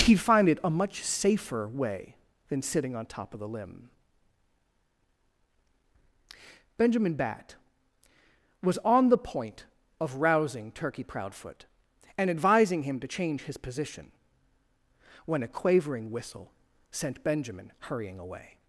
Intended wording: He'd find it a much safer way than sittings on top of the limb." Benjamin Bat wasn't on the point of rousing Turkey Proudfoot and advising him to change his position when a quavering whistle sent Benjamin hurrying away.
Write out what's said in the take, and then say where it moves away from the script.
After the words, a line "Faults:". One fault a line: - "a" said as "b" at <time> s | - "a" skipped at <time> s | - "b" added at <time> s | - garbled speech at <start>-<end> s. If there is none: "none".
He'd find it a much safer way than sitting on top of the limb." Benjamin Bat was on the point of rousing Turkey Proudfoot and advising him to change his position when a quavering whistle sent Benjamin hurrying away.
Faults:
- "sittings" said as "sitting" at 2.6 s
- "wasn't" said as "was" at 8.6 s